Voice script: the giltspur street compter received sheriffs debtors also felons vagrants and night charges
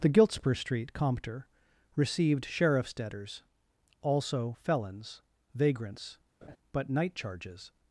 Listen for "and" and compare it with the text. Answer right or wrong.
wrong